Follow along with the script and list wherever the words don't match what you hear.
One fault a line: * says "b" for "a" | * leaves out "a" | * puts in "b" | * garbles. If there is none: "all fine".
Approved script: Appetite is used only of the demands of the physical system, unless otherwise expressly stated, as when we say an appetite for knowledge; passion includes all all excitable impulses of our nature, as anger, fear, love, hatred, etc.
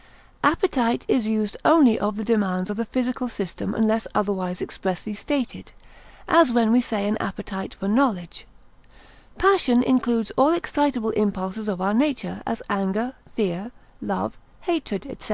* leaves out "all"